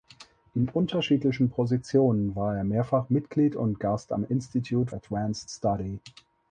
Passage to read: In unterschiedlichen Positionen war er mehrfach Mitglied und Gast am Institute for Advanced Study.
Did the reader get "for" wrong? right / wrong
wrong